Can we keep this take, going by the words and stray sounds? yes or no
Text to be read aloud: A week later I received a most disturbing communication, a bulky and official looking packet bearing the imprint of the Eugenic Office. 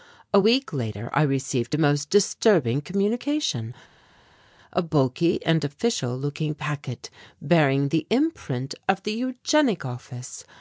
yes